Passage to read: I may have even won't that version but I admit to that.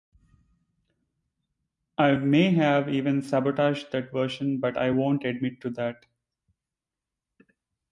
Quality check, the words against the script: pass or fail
fail